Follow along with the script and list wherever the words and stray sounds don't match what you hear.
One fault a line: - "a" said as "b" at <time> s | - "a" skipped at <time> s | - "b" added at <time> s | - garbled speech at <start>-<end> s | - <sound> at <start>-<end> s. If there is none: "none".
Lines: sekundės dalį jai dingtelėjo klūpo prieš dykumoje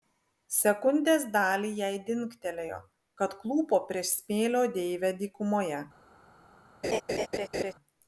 - "kad" added at 3.2 s
- "smėlio deivę" added at 4.2 s
- laugh at 6.8-7.7 s